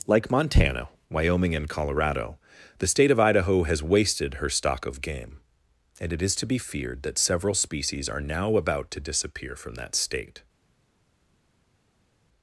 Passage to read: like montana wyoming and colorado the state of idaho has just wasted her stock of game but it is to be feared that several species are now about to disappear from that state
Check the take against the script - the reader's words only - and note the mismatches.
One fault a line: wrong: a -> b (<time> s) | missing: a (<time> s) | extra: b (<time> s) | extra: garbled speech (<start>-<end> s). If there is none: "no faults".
missing: just (3.8 s)
wrong: but -> and (6.0 s)